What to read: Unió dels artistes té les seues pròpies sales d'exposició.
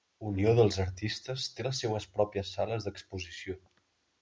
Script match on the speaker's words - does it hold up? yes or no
yes